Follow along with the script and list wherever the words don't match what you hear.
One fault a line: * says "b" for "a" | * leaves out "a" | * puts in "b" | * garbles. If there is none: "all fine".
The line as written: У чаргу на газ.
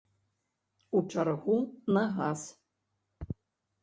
all fine